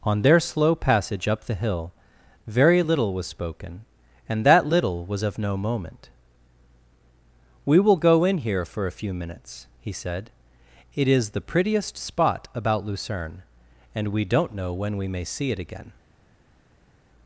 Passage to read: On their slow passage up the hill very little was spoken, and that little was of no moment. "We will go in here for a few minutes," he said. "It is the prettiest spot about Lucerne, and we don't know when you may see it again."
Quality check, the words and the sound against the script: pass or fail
fail